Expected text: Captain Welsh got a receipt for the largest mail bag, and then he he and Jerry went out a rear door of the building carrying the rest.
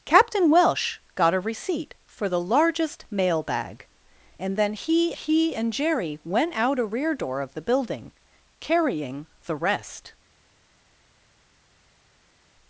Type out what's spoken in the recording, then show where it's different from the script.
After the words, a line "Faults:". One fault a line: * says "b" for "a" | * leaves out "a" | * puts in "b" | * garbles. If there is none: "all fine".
Captain Welsh got a receipt for the largest mail bag, and then he he and Jerry went out a rear door of the building carrying the rest.
Faults:
all fine